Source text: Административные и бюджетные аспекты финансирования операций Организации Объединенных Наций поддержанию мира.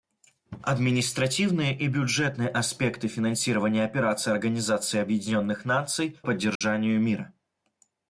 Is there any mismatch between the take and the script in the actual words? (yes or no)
no